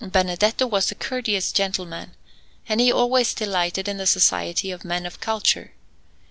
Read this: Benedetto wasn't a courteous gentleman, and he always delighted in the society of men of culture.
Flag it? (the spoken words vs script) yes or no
yes